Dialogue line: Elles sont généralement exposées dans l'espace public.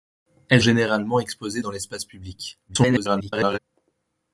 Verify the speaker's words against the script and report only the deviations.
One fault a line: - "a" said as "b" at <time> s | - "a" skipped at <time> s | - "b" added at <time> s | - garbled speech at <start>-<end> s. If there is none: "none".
- "sont" skipped at 0.6 s
- garbled speech at 2.7-3.6 s